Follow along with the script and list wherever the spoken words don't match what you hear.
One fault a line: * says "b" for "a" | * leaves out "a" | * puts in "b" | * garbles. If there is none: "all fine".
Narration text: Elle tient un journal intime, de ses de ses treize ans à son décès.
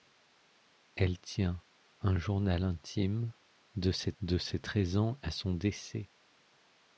all fine